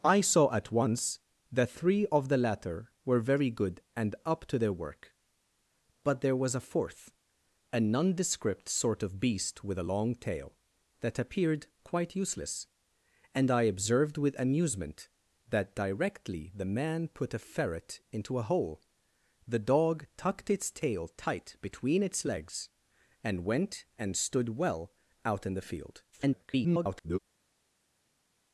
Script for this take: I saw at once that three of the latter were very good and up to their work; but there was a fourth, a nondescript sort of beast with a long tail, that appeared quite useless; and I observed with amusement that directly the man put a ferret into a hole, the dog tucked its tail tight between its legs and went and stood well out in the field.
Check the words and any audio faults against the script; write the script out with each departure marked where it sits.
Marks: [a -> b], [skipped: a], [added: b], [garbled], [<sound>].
I saw at once that three of the latter were very good and up to their work; but there was a fourth, a nondescript sort of beast with a long tail, that appeared quite useless; and I observed with amusement that directly the man put a ferret into a hole, the dog tucked its tail tight between its legs and went and stood well out in the field. [garbled]